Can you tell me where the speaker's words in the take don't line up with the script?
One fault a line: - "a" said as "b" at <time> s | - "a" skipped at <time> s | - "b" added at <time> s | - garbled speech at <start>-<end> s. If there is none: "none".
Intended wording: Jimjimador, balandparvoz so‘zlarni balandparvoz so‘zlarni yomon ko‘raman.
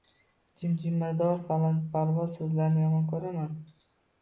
- "balandparvoz so‘zlarni" skipped at 2.9 s